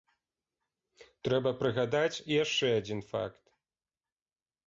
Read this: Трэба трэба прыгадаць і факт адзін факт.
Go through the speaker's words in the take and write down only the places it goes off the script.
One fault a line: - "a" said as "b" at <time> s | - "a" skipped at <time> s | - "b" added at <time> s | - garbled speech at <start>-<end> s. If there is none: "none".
- "трэба" skipped at 1.5 s
- "факт" said as "яшчэ" at 2.4 s